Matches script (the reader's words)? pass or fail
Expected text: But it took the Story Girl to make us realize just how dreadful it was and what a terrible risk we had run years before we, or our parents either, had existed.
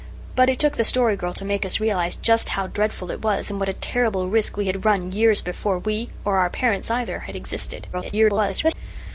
fail